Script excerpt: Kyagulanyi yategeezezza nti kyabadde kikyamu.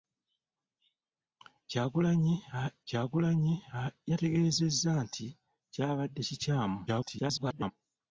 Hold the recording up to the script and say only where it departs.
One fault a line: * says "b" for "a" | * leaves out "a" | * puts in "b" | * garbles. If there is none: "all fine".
* puts in "kyagulanyi"
* garbles